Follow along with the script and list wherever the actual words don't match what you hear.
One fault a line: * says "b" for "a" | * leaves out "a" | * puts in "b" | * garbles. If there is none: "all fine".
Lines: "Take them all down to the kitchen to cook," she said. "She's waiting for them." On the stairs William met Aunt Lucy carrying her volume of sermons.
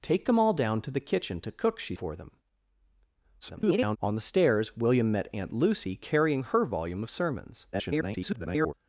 * leaves out "said She's waiting"
* garbles
* garbles